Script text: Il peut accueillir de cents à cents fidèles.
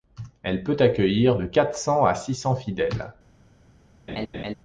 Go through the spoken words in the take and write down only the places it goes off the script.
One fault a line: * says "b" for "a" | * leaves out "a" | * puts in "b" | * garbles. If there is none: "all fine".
* says "Elle" for "Il"
* puts in "quatre"
* puts in "six"